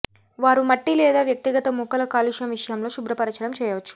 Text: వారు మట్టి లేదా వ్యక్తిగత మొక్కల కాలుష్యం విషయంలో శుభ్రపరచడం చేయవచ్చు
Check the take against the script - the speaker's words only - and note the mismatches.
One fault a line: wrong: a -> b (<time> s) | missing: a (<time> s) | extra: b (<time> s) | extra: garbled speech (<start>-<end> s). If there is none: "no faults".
no faults